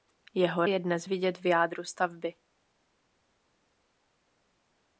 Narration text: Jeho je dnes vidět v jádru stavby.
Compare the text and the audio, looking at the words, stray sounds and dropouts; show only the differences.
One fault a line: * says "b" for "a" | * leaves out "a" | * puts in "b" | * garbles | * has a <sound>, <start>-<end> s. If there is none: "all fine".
all fine